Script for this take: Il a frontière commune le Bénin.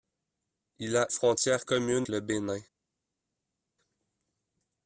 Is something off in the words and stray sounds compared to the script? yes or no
no